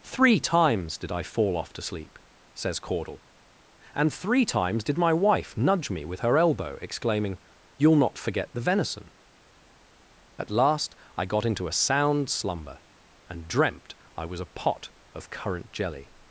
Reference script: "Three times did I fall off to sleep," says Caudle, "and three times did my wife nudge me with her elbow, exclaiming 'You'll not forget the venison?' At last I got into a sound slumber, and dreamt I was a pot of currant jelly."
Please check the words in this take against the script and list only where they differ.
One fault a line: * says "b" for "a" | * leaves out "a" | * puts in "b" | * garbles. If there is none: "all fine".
all fine